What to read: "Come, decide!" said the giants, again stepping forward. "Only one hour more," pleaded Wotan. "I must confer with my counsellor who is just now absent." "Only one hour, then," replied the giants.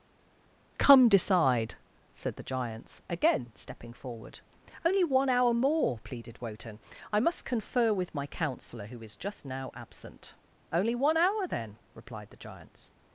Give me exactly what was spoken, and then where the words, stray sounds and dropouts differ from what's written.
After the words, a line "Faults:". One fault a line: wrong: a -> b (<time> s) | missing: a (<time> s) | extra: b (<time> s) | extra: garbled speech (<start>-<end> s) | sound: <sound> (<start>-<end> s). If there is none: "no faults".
"Come, decide!" said the giants, again stepping forward. "Only one hour more," pleaded Wotan. "I must confer with my counsellor who is just now absent." "Only one hour, then," replied the giants.
Faults:
no faults